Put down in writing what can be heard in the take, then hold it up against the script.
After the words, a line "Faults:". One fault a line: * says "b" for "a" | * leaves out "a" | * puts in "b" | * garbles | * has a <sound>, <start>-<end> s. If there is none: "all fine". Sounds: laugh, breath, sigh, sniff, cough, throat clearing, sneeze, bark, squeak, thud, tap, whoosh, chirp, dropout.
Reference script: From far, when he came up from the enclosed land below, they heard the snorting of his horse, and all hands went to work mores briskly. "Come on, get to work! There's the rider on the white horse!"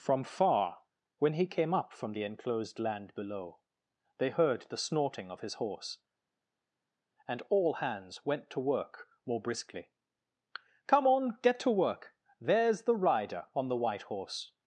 From far, when he came up from the enclosed land below, they heard the snorting of his horse, and all hands went to work more briskly. "Come on, get to work! There's the rider on the white horse!"
Faults:
* says "more" for "mores"